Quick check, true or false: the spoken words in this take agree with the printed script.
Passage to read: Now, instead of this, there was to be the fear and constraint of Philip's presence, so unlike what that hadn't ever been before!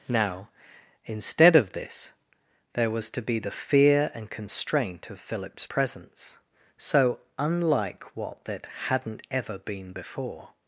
true